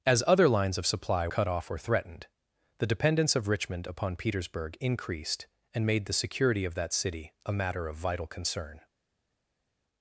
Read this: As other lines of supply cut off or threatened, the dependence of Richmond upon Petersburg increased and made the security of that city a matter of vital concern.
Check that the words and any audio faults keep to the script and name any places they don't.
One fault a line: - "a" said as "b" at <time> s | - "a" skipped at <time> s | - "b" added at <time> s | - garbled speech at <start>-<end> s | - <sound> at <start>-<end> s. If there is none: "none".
none